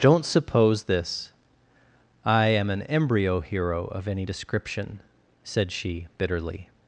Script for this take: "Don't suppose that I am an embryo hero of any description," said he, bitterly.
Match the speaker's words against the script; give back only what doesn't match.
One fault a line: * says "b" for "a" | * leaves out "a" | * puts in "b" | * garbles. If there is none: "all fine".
* says "this" for "that"
* says "she" for "he"